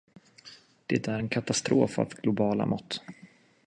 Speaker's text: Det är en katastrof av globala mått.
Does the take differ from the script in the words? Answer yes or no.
no